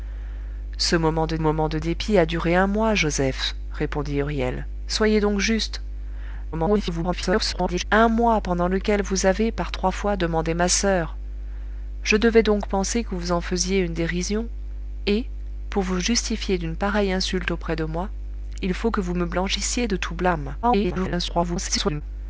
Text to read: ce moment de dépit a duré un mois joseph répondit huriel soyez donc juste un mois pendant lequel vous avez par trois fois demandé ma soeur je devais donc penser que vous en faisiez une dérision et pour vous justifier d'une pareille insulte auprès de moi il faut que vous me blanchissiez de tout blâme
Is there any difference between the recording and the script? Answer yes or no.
yes